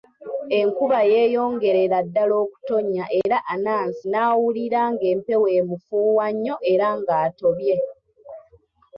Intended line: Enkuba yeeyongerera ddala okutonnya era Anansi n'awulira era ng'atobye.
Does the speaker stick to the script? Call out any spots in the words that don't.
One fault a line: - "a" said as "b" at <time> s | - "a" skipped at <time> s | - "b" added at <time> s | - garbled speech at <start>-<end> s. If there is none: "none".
- "ng'empewo emufuuwa nnyo" added at 4.9 s